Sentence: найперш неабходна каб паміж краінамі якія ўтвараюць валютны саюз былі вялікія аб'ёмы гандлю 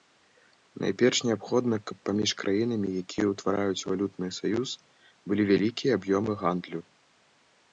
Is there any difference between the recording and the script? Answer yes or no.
no